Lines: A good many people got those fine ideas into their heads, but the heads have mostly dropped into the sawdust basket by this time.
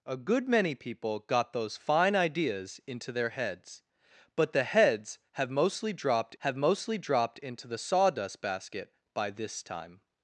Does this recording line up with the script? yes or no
no